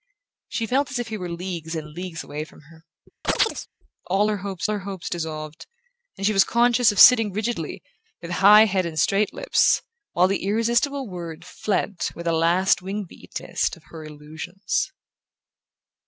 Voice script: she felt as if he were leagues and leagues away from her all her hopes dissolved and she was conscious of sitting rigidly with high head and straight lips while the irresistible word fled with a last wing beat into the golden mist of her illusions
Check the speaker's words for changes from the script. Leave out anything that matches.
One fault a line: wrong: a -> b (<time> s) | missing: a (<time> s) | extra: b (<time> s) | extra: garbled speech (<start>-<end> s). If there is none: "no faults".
extra: her hopes (4.7 s)
missing: into the golden (13.4 s)